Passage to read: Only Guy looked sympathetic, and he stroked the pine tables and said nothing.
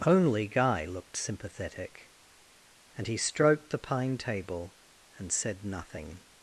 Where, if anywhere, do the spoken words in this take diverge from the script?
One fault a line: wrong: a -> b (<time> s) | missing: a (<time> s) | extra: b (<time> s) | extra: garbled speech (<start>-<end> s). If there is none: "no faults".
wrong: tables -> table (4.2 s)